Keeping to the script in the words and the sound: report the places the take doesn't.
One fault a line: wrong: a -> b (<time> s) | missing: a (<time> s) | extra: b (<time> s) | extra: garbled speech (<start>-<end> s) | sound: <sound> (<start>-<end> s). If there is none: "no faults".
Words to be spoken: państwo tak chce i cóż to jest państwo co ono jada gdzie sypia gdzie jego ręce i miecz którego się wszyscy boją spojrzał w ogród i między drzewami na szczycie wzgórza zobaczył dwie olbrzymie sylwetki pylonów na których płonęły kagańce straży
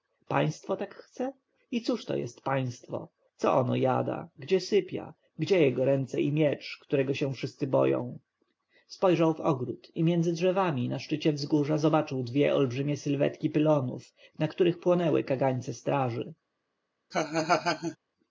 sound: laugh (17.1-18.0 s)